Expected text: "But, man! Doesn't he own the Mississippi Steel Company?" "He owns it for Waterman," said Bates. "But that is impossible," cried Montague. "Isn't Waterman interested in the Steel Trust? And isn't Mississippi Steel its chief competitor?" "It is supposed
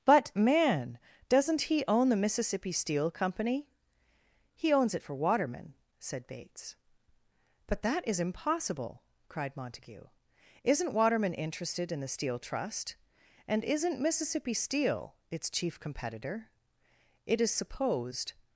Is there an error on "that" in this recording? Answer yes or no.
no